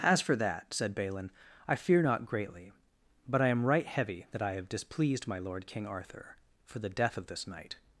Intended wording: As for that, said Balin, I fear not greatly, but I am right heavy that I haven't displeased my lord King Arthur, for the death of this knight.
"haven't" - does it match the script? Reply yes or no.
no